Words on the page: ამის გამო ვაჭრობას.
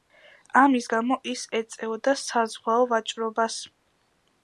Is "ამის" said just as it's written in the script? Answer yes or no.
yes